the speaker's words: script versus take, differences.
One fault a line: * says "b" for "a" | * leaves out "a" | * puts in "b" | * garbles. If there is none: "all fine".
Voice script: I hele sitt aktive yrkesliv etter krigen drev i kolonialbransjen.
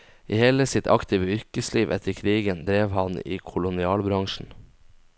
* puts in "han"